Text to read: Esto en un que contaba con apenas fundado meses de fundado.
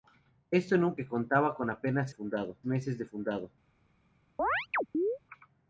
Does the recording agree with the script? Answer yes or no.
yes